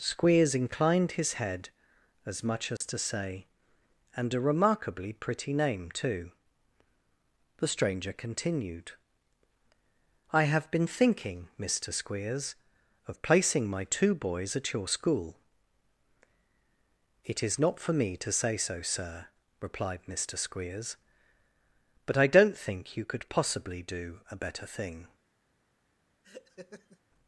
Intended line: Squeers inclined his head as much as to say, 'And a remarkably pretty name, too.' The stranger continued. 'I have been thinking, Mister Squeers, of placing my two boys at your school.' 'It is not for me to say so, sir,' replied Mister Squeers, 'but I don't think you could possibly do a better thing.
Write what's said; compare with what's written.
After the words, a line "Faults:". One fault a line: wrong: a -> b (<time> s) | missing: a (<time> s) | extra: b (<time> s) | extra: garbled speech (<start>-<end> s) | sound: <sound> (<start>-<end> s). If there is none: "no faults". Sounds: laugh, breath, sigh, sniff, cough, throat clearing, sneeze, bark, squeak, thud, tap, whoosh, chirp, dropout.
Squeers inclined his head as much as to say, 'And a remarkably pretty name, too.' The stranger continued. 'I have been thinking, Mister Squeers, of placing my two boys at your school.' 'It is not for me to say so, sir,' replied Mister Squeers, 'but I don't think you could possibly do a better thing.
Faults:
sound: dropout (2.8-2.8 s)
sound: laugh (26.2-27.0 s)